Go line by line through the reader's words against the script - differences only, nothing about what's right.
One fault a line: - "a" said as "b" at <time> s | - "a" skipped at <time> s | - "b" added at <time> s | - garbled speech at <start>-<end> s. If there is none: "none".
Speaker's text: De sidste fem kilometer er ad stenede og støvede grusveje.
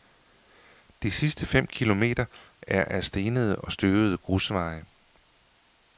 none